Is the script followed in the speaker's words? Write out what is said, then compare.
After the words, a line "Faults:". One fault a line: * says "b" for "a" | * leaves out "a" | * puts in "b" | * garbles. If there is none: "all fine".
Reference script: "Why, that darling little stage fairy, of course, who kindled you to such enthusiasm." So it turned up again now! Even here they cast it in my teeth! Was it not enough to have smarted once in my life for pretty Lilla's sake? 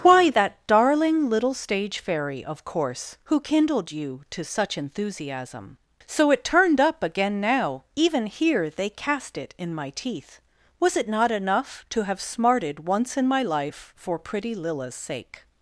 "Why, that darling little stage fairy, of course, who kindled you to such enthusiasm." So it turned up again now! Even here they cast it in my teeth! Was it not enough to have smarted once in my life for pretty Lilla's sake?
Faults:
all fine